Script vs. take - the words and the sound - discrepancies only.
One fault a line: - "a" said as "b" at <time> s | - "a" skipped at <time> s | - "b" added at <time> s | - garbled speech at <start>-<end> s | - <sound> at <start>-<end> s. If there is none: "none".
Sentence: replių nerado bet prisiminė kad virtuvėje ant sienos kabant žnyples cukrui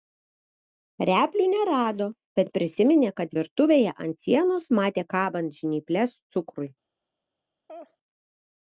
- "matė" added at 4.8 s
- laugh at 7.7-8.0 s